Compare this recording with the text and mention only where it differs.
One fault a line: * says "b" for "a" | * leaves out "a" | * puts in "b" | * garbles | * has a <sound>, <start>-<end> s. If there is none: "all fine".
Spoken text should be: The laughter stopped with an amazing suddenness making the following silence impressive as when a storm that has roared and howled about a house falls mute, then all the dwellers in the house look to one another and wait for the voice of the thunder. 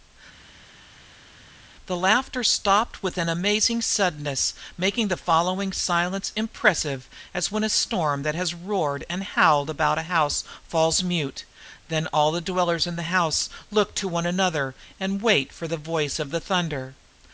all fine